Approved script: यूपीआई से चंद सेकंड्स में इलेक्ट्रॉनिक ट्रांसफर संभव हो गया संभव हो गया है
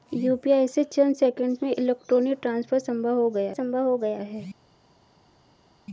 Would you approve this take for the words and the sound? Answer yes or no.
yes